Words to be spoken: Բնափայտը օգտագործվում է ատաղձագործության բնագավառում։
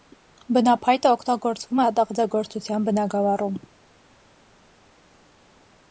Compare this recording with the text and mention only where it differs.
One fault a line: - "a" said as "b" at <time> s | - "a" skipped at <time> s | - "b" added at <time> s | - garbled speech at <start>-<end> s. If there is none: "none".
none